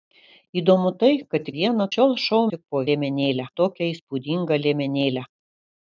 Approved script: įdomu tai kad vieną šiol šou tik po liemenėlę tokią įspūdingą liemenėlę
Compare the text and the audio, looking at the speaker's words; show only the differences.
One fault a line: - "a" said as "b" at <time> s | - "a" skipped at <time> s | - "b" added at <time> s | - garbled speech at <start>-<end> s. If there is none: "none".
none